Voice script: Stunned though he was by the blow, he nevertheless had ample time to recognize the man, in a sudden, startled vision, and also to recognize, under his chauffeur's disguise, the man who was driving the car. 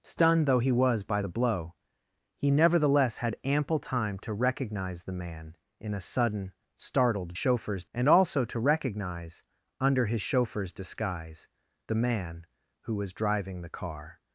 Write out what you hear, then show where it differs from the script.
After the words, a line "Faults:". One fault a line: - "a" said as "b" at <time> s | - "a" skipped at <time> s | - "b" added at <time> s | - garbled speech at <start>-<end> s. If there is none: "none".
Stunned though he was by the blow, he nevertheless had ample time to recognize the man, in a sudden, startled chauffeur's, and also to recognize, under his chauffeur's disguise, the man who was driving the car.
Faults:
- "vision" said as "chauffeur's" at 7.3 s